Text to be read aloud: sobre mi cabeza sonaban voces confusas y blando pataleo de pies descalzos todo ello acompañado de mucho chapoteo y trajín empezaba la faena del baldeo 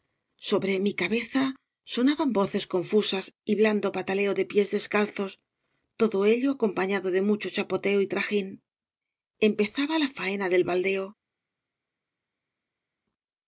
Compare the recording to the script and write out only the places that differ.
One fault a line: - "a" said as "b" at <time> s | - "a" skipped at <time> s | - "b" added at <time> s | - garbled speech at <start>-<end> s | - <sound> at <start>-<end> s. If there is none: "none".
none